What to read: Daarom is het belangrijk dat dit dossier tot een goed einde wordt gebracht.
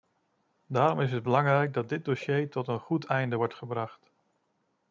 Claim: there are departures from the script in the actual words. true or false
false